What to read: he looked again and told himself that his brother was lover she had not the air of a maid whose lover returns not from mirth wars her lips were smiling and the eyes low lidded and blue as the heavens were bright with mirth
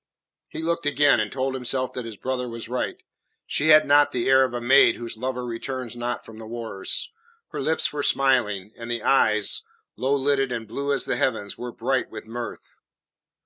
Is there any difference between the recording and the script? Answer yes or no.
yes